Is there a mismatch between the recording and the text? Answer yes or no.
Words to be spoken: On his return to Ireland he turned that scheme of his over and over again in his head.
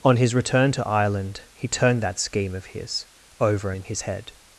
yes